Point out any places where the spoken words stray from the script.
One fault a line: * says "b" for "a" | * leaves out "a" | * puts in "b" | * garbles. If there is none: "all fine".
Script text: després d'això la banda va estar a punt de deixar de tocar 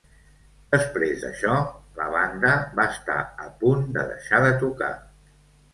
all fine